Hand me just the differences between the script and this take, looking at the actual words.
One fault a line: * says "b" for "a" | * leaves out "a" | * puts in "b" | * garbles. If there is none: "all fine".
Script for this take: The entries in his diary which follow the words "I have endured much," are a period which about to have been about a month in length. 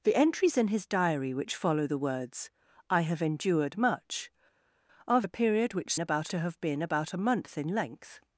all fine